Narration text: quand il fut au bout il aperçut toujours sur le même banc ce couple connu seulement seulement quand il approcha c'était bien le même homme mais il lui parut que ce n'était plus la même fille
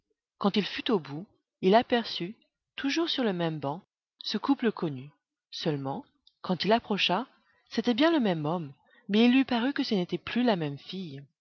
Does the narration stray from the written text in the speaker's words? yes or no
yes